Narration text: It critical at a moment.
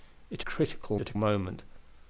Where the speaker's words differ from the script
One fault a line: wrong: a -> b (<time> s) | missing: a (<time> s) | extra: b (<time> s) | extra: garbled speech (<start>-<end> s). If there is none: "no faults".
no faults